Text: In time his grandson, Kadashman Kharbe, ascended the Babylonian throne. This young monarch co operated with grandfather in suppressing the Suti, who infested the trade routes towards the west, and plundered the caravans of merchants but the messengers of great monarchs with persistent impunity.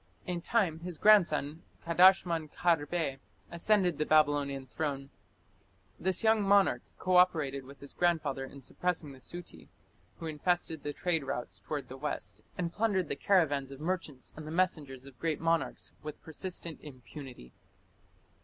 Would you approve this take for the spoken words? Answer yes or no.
no